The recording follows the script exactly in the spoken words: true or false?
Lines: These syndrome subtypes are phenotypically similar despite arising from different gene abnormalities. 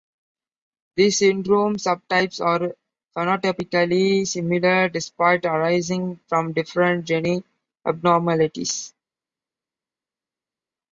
true